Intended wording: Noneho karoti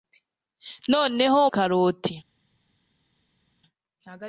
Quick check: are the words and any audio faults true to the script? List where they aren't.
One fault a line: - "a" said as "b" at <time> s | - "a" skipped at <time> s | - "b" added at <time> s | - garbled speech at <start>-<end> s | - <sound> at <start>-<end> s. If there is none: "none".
none